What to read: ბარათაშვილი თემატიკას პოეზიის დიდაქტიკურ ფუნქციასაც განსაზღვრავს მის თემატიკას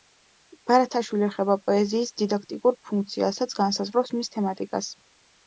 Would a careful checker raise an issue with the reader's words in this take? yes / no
yes